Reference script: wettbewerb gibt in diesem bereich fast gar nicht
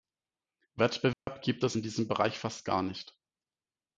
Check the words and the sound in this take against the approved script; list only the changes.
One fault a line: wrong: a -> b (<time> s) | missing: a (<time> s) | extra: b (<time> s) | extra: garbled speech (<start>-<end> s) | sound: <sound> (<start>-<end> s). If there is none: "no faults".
sound: dropout (1.1-1.3 s)
extra: es (1.6 s)